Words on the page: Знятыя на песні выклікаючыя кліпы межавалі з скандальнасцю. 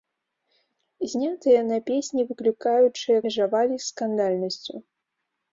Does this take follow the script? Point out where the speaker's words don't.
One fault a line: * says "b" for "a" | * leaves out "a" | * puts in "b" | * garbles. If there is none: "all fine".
* leaves out "кліпы"